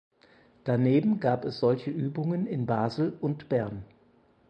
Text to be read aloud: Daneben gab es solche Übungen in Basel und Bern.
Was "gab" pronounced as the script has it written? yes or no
yes